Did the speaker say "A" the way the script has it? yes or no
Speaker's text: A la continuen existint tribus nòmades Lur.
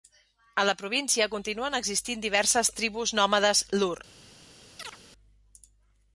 yes